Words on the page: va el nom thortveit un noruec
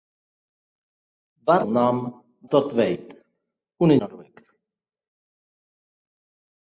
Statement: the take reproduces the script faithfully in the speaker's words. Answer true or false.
true